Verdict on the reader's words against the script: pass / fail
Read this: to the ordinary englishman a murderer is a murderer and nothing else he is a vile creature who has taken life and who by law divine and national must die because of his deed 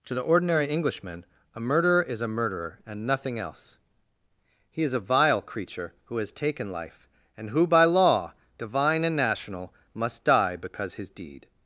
fail